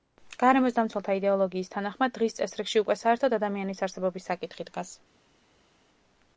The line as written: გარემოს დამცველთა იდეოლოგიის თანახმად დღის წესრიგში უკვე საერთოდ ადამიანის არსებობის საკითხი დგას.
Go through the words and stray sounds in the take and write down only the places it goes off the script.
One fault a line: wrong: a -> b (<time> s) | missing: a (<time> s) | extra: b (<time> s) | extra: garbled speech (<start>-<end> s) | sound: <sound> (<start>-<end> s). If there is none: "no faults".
no faults